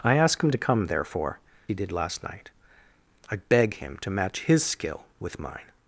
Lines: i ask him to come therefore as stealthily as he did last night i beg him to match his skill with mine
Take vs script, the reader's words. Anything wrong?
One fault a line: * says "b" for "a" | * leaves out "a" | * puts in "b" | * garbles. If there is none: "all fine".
* leaves out "as stealthily as"